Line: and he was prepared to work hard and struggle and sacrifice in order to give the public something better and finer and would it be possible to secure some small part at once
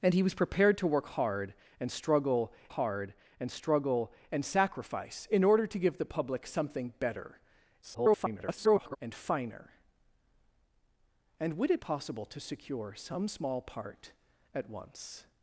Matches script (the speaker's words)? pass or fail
fail